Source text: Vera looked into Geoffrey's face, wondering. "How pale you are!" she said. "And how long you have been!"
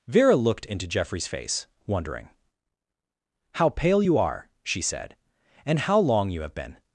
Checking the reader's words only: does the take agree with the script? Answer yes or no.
yes